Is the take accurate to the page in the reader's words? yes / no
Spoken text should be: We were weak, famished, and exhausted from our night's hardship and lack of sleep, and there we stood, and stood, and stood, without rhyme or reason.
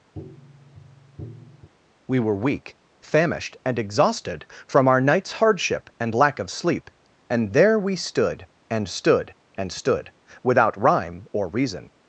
yes